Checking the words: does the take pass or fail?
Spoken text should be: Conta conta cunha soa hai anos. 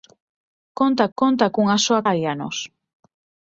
pass